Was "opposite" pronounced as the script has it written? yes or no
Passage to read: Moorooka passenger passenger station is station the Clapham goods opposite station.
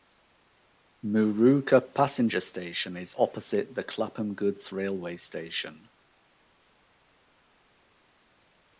no